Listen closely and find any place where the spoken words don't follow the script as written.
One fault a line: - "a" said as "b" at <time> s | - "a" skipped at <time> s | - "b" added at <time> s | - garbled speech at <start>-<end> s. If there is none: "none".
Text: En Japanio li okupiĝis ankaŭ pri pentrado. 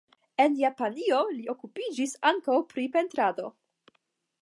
none